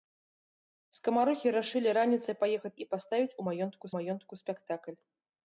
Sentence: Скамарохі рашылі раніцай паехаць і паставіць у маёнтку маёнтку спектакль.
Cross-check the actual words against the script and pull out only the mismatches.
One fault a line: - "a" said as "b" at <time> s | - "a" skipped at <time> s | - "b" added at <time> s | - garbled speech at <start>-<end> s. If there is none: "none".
none